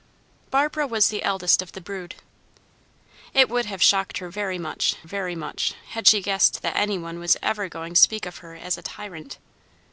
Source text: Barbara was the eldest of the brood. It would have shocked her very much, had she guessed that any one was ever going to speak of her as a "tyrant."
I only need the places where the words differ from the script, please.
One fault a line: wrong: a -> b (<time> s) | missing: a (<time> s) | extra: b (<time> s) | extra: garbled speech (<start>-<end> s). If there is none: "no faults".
extra: very much (5.0 s)
missing: to (7.9 s)